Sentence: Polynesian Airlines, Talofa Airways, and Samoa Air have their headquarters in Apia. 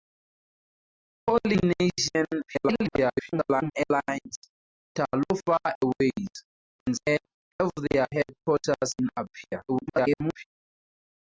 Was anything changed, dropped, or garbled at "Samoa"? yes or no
yes